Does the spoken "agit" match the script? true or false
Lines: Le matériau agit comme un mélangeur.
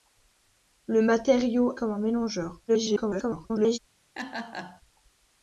false